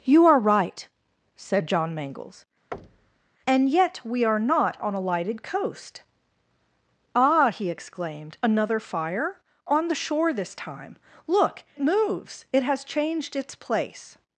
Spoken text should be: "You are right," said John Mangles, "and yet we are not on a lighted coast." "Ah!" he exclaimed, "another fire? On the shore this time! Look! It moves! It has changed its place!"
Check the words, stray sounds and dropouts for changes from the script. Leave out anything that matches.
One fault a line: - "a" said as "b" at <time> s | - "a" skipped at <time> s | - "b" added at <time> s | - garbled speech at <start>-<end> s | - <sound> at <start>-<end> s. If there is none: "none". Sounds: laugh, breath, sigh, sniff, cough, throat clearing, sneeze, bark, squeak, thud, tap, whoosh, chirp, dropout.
- thud at 2.7-3.3 s
- "It" skipped at 11.6 s